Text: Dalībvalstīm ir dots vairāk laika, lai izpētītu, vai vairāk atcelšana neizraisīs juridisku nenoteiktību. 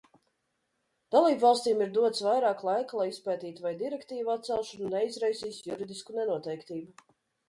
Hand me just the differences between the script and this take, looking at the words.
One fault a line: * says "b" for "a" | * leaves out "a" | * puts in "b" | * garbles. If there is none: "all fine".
* says "direktīvu" for "vairāk"